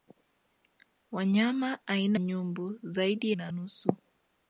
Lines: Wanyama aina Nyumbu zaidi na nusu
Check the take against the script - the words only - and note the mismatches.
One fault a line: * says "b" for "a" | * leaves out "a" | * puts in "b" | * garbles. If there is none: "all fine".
all fine